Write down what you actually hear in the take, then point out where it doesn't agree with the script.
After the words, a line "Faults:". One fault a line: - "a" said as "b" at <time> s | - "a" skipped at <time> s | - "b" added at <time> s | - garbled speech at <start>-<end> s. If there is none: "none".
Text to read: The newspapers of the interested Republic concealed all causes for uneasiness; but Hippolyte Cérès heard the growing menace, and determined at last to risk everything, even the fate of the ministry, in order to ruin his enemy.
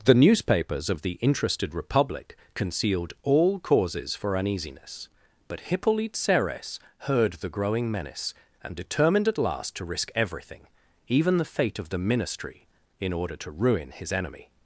The newspapers of the interested Republic concealed all causes for uneasiness; but Hippolyte Cérès heard the growing menace, and determined at last to risk everything, even the fate of the ministry, in order to ruin his enemy.
Faults:
none